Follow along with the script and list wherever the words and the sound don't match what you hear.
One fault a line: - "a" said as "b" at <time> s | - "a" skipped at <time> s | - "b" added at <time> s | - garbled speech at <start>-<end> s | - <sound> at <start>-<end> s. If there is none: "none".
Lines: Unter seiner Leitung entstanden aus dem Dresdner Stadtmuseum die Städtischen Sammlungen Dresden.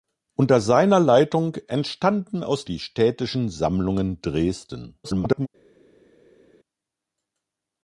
- "dem Dresdner Stadtmuseum" skipped at 2.6 s
- garbled speech at 5.0-5.5 s